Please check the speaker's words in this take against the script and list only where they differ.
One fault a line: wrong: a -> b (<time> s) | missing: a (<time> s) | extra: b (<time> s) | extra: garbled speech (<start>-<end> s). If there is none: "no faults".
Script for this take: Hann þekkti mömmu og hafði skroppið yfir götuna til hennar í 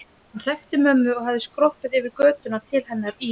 no faults